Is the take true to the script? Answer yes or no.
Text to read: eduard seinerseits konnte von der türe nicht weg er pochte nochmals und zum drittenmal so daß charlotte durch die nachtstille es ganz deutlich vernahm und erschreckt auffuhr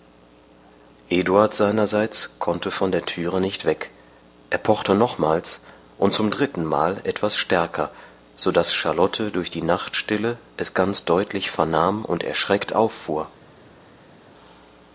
no